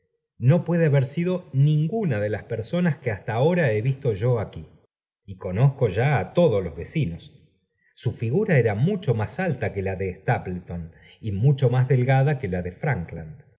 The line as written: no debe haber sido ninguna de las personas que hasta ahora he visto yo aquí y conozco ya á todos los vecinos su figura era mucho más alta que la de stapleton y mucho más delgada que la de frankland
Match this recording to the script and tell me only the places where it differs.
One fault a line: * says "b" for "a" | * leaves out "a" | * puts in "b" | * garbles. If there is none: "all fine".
* says "puede" for "debe"